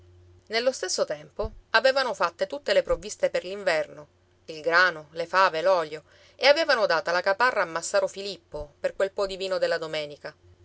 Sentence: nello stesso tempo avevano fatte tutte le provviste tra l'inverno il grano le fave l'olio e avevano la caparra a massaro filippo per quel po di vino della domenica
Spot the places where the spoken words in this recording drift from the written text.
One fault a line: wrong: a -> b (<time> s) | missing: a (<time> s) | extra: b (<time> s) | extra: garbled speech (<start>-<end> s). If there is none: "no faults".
wrong: tra -> per (3.3 s)
extra: data (6.9 s)